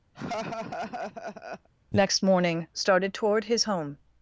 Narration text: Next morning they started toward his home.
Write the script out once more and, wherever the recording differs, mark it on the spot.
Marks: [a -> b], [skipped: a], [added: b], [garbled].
Next morning [skipped: they] started toward his home.